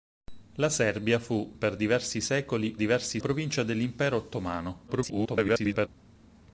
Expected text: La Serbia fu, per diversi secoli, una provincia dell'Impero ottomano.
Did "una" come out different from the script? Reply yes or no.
yes